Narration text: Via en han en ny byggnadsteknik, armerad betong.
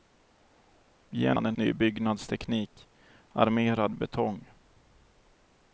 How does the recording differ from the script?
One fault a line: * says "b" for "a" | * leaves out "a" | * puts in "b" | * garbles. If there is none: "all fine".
all fine